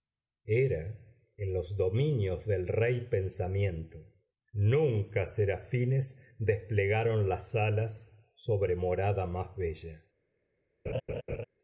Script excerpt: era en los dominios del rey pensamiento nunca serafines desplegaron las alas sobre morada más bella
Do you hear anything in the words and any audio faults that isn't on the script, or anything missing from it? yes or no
yes